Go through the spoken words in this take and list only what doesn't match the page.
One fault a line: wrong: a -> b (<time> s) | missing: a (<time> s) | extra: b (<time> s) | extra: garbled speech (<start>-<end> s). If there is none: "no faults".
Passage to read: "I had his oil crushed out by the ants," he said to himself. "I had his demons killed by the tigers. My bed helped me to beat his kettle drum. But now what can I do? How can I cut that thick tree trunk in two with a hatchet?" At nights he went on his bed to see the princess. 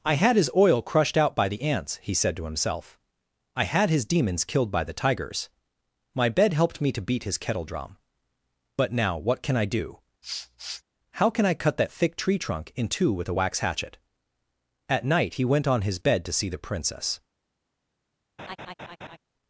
extra: wax (13.3 s)
wrong: nights -> night (15.1 s)